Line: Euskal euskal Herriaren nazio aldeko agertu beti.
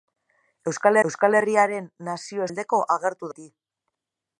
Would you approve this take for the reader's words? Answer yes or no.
yes